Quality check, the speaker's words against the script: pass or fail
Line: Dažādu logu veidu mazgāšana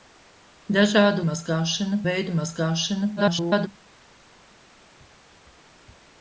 fail